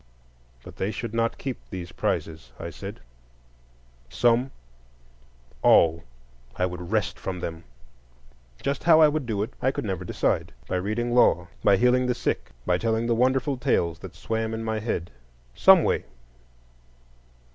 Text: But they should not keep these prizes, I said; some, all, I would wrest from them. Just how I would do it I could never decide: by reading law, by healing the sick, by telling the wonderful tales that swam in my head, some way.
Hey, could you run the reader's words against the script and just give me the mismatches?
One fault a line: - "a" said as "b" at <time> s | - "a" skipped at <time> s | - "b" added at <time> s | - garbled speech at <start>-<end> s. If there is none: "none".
none